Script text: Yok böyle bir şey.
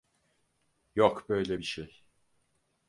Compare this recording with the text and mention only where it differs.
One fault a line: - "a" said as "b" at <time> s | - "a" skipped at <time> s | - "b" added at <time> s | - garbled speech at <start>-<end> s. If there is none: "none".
none